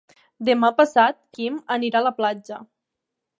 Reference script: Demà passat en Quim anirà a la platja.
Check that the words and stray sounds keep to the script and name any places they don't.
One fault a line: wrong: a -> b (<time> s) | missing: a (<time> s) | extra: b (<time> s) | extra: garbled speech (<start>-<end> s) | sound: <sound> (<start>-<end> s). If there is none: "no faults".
missing: en (1.2 s)